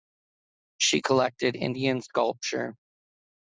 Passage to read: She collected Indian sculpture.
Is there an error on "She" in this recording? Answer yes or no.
no